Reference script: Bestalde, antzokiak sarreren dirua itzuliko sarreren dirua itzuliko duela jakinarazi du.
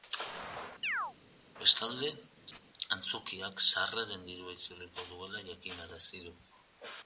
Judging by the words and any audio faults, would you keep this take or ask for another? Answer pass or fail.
fail